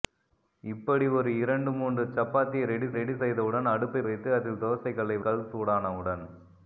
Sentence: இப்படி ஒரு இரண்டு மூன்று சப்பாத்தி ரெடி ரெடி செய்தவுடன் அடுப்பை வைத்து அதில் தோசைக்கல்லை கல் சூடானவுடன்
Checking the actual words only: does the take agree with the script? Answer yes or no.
yes